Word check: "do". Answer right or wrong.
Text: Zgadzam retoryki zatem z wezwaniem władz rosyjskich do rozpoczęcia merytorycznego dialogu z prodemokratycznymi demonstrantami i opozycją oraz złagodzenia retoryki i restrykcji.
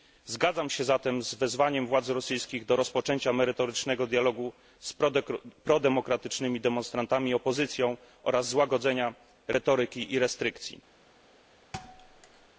right